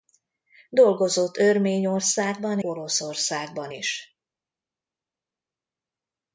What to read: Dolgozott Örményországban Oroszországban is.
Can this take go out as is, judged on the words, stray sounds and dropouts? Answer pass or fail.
pass